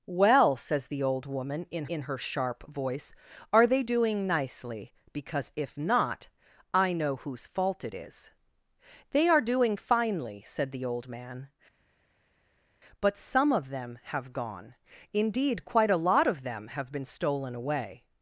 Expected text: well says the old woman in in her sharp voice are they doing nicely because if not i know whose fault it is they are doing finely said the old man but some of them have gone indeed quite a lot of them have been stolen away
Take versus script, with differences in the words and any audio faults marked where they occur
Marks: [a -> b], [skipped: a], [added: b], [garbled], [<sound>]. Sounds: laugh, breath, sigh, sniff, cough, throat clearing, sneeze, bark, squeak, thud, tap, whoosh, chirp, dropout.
well says the old woman in in her sharp voice are they doing nicely because if not i know whose fault it is they are doing finely said the old man but some of them have gone indeed quite a lot of them have been stolen away